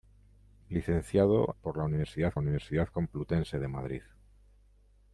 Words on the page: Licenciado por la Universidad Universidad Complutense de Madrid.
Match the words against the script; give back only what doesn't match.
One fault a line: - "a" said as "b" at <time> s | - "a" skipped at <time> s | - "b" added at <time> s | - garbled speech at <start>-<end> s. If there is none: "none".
none